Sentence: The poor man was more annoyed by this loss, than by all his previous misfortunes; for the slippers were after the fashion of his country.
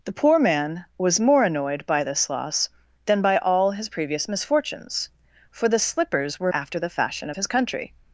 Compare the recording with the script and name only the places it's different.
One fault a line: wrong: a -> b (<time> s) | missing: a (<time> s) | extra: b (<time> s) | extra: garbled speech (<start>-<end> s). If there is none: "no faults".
no faults